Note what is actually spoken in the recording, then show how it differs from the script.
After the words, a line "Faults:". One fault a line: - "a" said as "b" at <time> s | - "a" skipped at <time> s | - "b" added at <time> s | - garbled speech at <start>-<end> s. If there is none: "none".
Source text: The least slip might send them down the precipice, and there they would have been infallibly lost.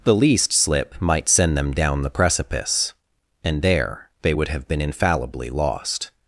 The least slip might send them down the precipice, and there they would have been infallibly lost.
Faults:
none